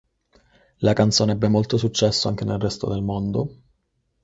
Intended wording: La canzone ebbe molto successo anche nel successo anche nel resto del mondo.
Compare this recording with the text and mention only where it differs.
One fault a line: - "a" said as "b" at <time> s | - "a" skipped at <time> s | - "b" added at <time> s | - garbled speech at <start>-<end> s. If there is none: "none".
- "successo anche nel" skipped at 2.6 s